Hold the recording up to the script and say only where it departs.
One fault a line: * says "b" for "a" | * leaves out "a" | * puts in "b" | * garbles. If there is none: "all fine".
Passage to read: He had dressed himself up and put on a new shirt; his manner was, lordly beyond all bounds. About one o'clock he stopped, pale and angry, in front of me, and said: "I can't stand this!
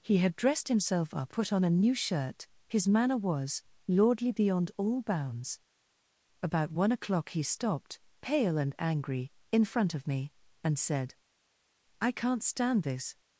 * leaves out "and"